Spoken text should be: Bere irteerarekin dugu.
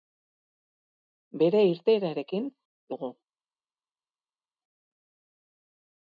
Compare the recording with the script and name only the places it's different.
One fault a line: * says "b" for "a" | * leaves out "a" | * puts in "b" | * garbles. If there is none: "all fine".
all fine